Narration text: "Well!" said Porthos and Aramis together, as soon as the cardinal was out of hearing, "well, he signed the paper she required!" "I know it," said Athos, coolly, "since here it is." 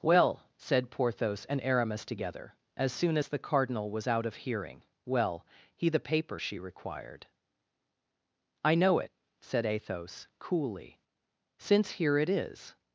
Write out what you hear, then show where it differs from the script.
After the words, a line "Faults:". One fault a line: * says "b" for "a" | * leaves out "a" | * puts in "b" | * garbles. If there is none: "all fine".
"Well!" said Porthos and Aramis together, as soon as the cardinal was out of hearing, "well, he the paper she required!" "I know it," said Athos, coolly, "since here it is."
Faults:
* leaves out "signed"